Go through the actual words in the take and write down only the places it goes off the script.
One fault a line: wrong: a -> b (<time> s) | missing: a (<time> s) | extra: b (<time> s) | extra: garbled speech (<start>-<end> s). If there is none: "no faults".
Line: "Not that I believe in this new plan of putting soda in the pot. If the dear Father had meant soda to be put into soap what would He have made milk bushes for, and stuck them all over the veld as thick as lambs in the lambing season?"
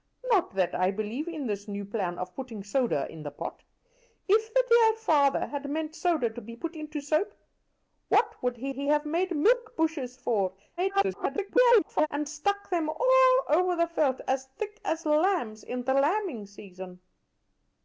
extra: He (8.7 s)
extra: garbled speech (10.8-12.1 s)